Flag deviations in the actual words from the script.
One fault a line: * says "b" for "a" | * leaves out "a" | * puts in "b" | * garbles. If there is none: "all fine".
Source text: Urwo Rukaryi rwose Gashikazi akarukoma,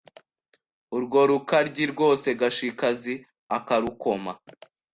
all fine